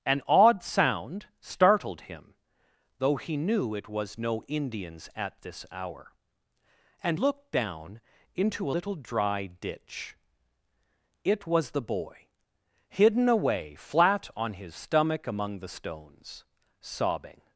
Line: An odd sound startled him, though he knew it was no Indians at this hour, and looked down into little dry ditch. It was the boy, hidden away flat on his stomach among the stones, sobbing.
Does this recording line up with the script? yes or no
yes